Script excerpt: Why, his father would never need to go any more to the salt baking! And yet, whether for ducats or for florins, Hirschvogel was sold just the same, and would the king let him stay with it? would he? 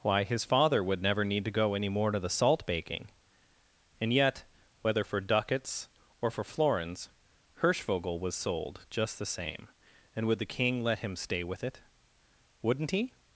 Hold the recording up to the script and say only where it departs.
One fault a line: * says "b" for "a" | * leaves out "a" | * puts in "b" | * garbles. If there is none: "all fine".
* says "wouldn't" for "would"